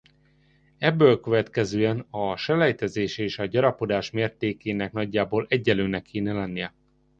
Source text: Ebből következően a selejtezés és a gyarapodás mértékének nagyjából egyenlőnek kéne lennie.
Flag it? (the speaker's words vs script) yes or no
no